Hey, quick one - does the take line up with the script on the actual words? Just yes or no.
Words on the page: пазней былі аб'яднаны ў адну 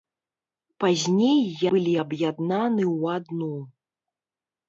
yes